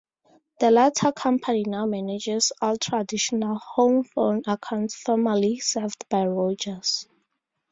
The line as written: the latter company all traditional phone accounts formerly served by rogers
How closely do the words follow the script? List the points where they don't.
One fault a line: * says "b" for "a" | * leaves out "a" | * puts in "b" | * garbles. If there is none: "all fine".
* puts in "now manages"
* puts in "home"